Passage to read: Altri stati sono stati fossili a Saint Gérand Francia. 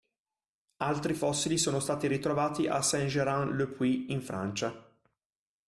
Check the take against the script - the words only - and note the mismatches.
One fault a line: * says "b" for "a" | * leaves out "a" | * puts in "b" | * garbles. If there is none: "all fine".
* says "fossili" for "stati"
* says "ritrovati" for "fossili"
* puts in "le Puy in"